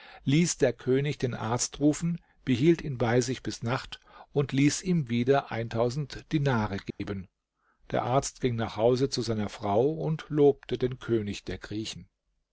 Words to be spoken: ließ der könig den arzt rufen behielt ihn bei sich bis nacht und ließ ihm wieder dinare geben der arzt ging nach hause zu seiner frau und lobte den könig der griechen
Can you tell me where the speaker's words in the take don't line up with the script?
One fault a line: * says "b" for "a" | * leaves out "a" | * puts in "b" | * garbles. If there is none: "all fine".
all fine